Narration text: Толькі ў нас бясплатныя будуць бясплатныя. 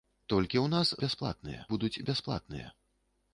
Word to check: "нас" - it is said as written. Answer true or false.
true